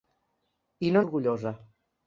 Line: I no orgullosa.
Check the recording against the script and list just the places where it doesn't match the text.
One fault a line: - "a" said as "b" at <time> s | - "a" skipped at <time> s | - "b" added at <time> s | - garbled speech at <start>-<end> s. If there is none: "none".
none